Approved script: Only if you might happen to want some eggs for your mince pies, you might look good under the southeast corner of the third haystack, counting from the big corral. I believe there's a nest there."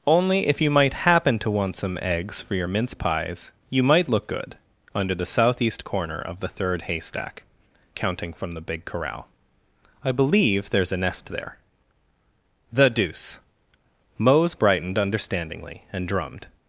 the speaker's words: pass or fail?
fail